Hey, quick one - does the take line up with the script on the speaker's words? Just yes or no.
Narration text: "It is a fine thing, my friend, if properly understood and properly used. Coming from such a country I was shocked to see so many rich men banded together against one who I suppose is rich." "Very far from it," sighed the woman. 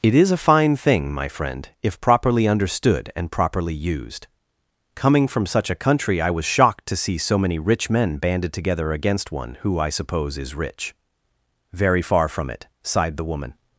yes